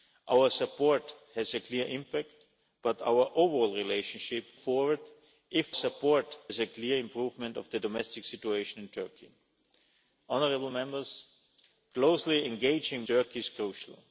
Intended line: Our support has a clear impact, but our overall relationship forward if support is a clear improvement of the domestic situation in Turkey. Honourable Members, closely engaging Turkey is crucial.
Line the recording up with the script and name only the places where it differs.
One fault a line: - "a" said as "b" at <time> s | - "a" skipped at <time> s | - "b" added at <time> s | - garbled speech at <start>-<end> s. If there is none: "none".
none